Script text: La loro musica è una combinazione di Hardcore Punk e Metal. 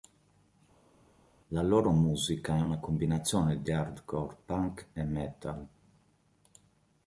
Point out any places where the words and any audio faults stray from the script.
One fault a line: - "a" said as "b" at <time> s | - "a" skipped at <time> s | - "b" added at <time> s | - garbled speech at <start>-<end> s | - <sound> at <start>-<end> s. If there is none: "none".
none